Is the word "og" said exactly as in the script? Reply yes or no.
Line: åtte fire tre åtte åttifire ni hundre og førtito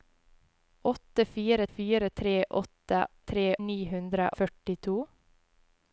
no